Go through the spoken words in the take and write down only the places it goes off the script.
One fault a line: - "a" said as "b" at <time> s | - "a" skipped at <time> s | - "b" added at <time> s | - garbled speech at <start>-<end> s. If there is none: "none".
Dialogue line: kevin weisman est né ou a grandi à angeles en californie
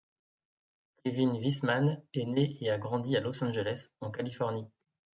- "ou" said as "et" at 2.6 s
- "los" added at 3.2 s